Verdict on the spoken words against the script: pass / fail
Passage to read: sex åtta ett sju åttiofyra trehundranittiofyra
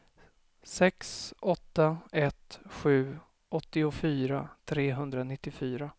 pass